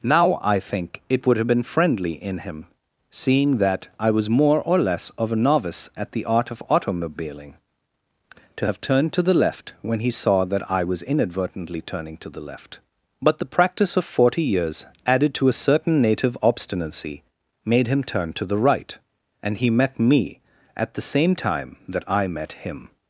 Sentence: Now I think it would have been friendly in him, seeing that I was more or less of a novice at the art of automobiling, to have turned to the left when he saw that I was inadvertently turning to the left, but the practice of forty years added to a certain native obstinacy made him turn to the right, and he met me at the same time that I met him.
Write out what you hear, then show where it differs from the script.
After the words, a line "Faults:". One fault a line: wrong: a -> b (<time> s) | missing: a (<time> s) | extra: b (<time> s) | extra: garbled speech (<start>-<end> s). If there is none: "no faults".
Now I think it would have been friendly in him, seeing that I was more or less of a novice at the art of automobiling, to have turned to the left when he saw that I was inadvertently turning to the left, but the practice of forty years added to a certain native obstinacy made him turn to the right, and he met me at the same time that I met him.
Faults:
no faults